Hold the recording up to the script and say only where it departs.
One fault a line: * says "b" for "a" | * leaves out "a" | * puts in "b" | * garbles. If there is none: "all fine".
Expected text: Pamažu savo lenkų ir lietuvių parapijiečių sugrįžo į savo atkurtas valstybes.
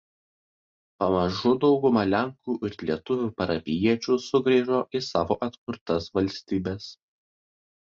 * says "dauguma" for "savo"